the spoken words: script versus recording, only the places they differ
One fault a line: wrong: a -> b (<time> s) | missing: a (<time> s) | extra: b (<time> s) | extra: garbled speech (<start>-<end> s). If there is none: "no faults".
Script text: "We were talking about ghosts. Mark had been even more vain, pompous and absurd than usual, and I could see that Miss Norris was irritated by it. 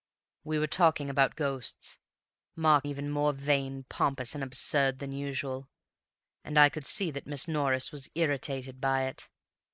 missing: had been (2.9 s)